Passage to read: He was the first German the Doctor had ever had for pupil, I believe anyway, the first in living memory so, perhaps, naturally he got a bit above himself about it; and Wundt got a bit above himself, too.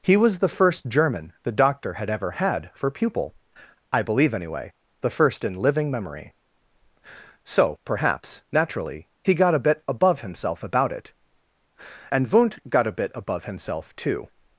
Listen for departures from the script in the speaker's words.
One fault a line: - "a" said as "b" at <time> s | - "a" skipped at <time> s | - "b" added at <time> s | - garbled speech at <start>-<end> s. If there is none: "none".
none